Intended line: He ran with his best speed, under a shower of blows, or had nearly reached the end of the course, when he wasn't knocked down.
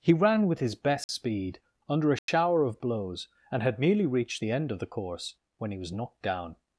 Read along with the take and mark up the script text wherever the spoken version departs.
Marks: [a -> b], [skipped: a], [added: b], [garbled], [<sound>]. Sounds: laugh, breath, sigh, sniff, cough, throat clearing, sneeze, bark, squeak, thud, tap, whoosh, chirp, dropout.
He ran with his best [dropout] speed, under a shower [dropout] of blows, [or -> and] had nearly reached the end of the course, when he [wasn't -> was] knocked down.